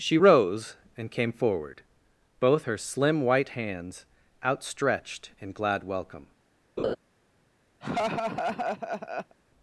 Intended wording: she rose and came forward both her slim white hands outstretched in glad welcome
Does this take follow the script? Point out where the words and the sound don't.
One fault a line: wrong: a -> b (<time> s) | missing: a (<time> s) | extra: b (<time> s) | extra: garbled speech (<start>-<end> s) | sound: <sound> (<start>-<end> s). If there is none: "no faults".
sound: laugh (6.8-7.0 s)
sound: laugh (7.8-9.4 s)